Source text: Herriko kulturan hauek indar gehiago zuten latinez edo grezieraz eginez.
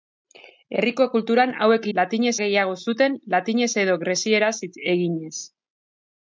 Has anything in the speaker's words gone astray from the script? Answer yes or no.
yes